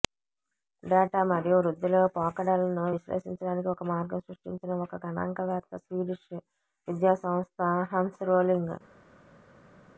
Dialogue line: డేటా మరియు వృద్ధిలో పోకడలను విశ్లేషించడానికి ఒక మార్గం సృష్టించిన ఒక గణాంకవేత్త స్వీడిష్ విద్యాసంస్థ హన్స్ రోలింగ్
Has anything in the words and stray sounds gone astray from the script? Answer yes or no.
no